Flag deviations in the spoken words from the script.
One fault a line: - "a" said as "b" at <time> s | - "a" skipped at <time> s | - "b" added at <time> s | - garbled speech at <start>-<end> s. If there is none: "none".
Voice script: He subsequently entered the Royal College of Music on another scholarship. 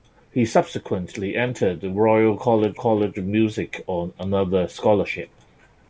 - "College" added at 2.7 s